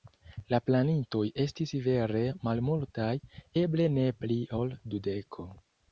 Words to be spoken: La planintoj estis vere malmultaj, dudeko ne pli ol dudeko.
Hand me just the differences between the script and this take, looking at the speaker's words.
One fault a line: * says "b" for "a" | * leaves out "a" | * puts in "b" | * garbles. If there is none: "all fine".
* says "eble" for "dudeko"